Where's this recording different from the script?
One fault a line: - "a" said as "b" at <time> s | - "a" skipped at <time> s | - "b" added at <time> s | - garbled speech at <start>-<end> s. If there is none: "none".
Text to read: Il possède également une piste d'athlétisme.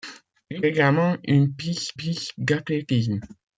- "possède" skipped at 0.7 s
- "piste" added at 1.9 s